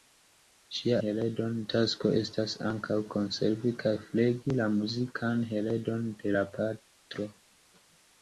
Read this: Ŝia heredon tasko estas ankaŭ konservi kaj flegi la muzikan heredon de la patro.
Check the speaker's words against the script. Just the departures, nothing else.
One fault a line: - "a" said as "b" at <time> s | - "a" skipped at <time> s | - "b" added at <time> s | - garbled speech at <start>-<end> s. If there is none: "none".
none